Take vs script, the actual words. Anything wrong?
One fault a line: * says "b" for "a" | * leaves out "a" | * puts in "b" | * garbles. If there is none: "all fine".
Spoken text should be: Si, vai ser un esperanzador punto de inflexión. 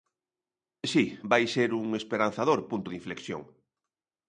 all fine